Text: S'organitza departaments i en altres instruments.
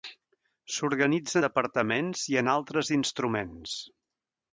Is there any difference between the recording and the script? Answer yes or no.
no